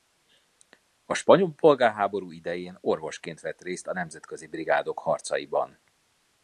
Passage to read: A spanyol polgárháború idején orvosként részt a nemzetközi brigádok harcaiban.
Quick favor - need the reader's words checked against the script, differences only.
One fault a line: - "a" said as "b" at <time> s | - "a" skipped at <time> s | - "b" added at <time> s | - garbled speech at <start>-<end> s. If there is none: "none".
- "vett" added at 3.4 s